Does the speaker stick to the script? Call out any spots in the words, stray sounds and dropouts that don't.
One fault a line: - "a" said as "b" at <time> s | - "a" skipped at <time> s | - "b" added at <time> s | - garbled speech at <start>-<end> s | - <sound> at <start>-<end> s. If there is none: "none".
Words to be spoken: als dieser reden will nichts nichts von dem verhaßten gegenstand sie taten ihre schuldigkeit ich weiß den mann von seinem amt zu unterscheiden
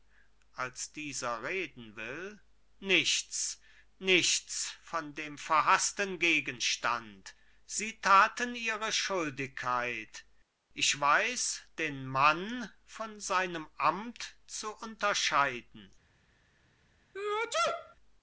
- sneeze at 17.1-18.0 s